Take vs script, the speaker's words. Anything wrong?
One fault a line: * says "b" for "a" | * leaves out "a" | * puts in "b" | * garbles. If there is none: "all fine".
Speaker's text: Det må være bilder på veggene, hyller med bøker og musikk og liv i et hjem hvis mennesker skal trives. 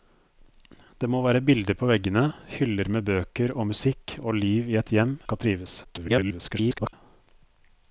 * leaves out "hvis mennesker"
* garbles